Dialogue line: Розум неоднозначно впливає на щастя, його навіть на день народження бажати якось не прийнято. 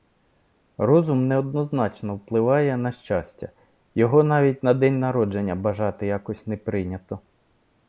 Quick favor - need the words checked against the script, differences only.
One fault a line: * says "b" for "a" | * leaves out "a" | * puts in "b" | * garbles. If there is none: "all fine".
all fine